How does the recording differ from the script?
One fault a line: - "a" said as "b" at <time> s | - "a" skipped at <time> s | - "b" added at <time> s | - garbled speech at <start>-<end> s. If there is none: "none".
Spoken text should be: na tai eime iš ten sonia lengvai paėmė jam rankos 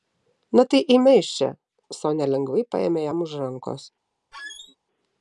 - "ten" said as "čia" at 1.4 s
- "už" added at 3.3 s